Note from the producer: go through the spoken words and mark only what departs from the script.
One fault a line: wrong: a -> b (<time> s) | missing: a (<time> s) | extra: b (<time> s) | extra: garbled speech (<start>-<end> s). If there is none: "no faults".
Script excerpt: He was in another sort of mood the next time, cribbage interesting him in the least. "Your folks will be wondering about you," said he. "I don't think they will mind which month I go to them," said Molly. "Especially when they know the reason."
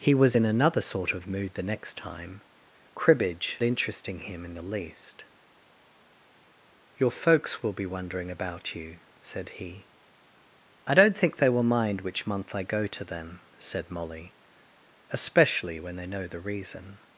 no faults